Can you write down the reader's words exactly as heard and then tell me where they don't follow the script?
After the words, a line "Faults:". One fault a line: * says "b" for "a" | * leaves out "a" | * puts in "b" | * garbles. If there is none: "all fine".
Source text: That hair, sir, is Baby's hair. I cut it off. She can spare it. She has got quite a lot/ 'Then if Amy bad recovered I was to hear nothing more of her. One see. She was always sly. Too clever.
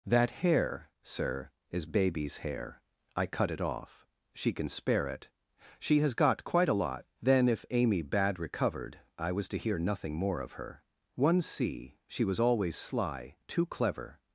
That hair, sir, is Baby's hair. I cut it off. She can spare it. She has got quite a lot/ 'Then if Amy bad recovered I was to hear nothing more of her. One see. She was always sly. Too clever.
Faults:
all fine